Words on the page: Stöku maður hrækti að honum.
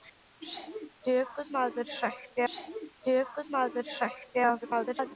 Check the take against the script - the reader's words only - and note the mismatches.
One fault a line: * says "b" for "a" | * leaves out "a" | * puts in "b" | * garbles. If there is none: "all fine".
* puts in "stöku maður hrækti"
* garbles